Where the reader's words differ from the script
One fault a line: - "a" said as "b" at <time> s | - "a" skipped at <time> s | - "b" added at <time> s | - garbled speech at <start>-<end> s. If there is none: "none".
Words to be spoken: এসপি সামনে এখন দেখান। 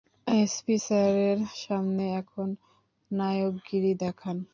- "স্যারের" added at 0.8 s
- "নায়কগিরি" added at 3.1 s